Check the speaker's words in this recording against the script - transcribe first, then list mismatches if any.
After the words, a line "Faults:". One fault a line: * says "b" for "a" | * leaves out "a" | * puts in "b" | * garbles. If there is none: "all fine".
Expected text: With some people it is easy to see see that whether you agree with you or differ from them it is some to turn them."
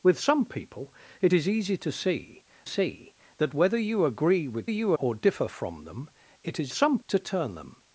With some people it is easy to see see that whether you agree with you or differ from them it is some to turn them."
Faults:
all fine